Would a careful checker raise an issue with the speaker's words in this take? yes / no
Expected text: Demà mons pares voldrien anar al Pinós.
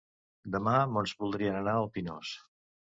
yes